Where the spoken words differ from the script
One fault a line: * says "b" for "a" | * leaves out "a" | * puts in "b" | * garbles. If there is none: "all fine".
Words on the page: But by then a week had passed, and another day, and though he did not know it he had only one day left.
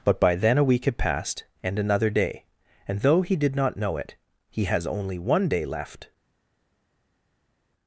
* says "has" for "had"